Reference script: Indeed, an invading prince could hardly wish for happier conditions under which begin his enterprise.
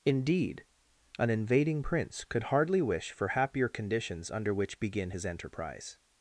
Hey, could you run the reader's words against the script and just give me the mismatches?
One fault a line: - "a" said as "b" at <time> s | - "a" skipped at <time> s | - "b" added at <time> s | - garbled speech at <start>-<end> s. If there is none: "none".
none